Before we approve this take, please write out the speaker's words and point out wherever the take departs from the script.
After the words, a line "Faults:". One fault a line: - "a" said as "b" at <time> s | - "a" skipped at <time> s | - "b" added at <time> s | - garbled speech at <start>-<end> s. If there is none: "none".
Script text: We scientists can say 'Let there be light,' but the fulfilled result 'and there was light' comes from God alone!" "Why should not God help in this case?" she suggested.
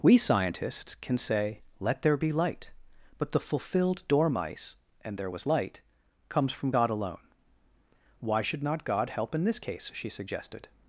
We scientists can say 'Let there be light,' but the fulfilled dormice 'and there was light' comes from God alone!" "Why should not God help in this case?" she suggested.
Faults:
- "result" said as "dormice" at 4.1 s